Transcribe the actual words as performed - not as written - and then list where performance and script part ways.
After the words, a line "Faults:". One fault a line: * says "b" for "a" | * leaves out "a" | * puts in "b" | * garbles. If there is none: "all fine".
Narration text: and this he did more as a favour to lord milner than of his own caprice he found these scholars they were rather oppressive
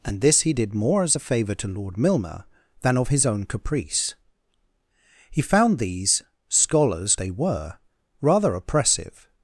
and this he did more as a favour to lord milner than of his own caprice he found these scholars they were rather oppressive
Faults:
all fine